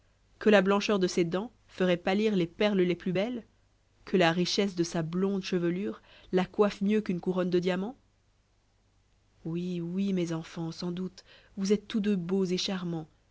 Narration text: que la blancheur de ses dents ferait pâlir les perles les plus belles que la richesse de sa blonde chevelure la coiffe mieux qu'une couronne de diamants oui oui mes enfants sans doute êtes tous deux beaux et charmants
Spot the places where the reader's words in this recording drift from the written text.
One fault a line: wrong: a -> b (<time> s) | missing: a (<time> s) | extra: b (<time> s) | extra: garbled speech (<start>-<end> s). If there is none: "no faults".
extra: vous (11.6 s)